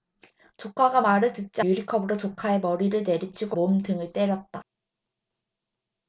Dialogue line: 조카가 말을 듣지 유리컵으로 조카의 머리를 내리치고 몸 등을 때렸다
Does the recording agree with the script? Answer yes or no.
yes